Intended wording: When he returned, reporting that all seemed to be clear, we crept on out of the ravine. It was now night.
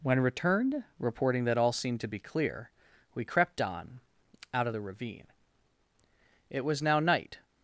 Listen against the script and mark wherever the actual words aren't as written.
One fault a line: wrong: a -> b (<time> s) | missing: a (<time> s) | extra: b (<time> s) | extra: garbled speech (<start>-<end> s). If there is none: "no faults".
missing: he (0.2 s)